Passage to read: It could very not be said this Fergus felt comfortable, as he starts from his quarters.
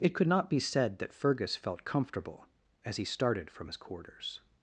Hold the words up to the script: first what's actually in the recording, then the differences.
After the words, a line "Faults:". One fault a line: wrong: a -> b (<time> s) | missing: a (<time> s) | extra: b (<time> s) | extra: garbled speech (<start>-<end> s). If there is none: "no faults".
It could not be said that Fergus felt comfortable, as he started from his quarters.
Faults:
missing: very (0.3 s)
wrong: this -> that (1.0 s)
wrong: starts -> started (3.0 s)